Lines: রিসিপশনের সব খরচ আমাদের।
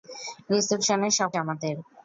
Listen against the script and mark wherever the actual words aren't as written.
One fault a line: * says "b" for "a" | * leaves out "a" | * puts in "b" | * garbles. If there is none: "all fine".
* leaves out "খরচ"